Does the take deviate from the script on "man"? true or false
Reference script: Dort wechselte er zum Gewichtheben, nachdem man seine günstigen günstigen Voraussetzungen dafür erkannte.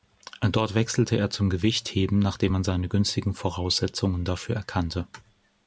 false